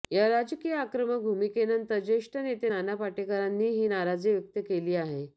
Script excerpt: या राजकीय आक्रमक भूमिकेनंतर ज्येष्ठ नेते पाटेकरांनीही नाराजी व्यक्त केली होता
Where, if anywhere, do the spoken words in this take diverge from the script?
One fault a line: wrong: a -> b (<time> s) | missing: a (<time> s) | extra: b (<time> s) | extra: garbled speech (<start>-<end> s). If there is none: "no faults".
extra: नाना (2.7 s)
wrong: होता -> आहे (4.9 s)